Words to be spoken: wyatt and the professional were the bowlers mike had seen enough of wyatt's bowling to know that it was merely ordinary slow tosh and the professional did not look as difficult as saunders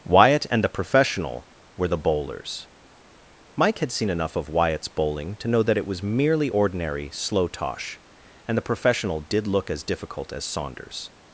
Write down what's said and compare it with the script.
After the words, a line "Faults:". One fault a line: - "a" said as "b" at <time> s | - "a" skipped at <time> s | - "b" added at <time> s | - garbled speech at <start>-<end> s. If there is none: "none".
wyatt and the professional were the bowlers mike had seen enough of wyatt's bowling to know that it was merely ordinary slow tosh and the professional did look as difficult as saunders
Faults:
- "not" skipped at 9.5 s